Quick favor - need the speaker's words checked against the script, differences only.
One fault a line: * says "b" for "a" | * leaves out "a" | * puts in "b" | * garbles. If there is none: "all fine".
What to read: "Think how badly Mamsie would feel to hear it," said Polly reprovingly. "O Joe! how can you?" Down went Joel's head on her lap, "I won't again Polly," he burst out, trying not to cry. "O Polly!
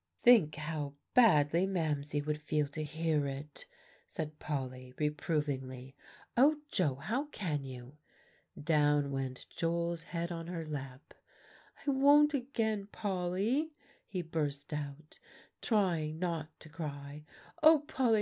all fine